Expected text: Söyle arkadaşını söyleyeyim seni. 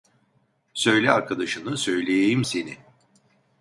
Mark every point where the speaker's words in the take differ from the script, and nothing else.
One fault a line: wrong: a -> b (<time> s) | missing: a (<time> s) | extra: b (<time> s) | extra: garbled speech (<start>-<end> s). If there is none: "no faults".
no faults